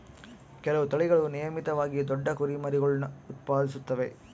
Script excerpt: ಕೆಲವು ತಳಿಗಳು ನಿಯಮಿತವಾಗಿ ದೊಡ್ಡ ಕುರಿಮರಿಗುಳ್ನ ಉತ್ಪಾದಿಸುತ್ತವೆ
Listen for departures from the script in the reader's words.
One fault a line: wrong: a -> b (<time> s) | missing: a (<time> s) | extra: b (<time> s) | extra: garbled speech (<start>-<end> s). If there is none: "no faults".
no faults